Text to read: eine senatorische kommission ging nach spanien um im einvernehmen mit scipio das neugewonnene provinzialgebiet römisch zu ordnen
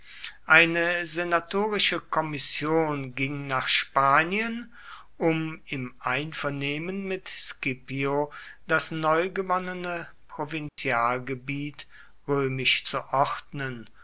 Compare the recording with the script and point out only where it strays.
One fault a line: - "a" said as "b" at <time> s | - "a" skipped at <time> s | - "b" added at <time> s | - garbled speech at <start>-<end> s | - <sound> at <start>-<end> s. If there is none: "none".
- dropout at 10.7-10.8 s